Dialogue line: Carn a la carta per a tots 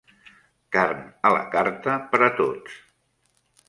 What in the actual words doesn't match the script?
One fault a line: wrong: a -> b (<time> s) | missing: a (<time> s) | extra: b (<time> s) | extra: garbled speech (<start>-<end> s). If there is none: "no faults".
no faults